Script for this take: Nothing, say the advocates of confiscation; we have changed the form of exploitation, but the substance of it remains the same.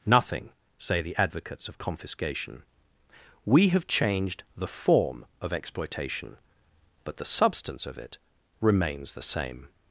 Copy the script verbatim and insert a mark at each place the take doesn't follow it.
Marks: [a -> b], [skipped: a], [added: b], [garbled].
Nothing, say the advocates of confiscation; we have changed the form of exploitation, but the substance of it remains the same.